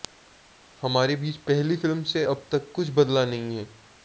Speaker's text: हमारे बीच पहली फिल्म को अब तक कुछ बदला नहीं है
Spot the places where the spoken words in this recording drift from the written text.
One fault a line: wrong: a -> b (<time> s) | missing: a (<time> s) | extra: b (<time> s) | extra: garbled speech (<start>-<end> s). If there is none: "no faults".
wrong: को -> से (2.1 s)